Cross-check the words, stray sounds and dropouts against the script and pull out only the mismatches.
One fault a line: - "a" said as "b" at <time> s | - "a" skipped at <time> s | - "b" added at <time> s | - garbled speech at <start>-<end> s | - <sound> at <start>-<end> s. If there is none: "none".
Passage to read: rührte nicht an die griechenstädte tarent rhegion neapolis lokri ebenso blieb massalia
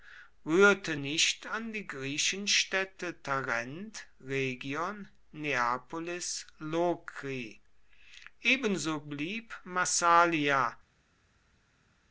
none